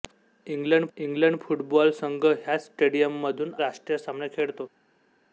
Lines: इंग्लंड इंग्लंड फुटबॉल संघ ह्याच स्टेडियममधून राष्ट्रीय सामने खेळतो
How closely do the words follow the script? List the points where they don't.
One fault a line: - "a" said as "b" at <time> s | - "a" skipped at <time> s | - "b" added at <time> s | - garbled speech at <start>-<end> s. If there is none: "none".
none